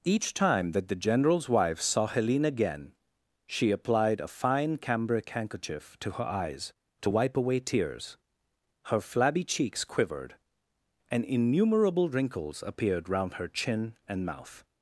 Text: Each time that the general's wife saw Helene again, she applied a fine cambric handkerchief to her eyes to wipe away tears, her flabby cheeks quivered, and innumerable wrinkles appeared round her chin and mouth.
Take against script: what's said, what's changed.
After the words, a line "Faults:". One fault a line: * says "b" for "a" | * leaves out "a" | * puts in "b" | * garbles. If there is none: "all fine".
Each time that the general's wife saw Helene again, she applied a fine cambric handkerchief to her eyes to wipe away tears, her flabby cheeks quivered, and innumerable wrinkles appeared round her chin and mouth.
Faults:
all fine